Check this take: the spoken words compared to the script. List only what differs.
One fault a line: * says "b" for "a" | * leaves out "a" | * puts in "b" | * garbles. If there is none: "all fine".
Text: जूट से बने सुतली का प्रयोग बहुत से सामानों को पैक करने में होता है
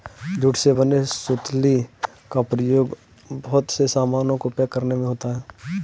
all fine